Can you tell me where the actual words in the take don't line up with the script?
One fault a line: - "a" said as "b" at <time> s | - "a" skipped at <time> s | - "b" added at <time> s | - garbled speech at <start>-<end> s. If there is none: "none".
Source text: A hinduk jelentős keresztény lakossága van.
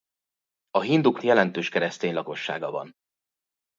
none